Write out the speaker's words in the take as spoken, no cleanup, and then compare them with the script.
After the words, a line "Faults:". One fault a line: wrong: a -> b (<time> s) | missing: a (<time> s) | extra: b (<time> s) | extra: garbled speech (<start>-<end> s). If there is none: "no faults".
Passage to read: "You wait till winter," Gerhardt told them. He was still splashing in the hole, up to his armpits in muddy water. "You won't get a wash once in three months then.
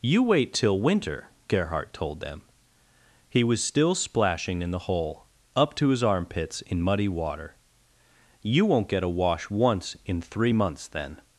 "You wait till winter," Gerhardt told them. He was still splashing in the hole, up to his armpits in muddy water. "You won't get a wash once in three months then.
Faults:
no faults